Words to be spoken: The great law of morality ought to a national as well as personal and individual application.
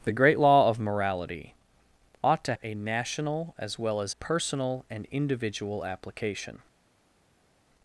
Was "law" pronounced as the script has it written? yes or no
yes